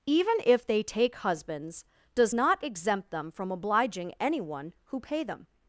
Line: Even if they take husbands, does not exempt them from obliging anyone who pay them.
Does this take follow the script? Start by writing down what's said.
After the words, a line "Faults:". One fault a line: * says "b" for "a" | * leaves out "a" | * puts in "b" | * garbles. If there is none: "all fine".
Even if they take husbands, does not exempt them from obliging anyone who pay them.
Faults:
all fine